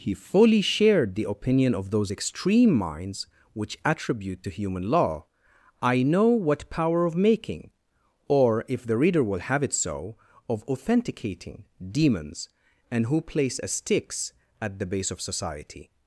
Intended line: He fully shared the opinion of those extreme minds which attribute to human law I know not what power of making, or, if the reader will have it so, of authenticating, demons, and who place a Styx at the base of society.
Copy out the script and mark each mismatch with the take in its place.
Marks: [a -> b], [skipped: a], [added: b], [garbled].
He fully shared the opinion of those extreme minds which attribute to human law I know [skipped: not] what power of making, or, if the reader will have it so, of authenticating, demons, and who place a Styx at the base of society.